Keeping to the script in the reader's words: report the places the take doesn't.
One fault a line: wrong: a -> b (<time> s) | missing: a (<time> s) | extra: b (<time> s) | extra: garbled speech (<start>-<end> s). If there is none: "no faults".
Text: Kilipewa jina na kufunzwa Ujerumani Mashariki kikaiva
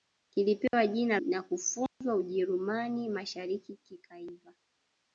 no faults